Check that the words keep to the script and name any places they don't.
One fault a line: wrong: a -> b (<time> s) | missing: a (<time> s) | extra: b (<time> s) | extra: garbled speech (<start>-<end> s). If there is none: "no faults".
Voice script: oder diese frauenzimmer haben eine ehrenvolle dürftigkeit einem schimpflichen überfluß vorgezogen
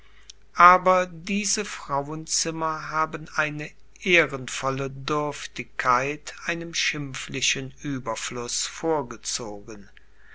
wrong: oder -> aber (0.6 s)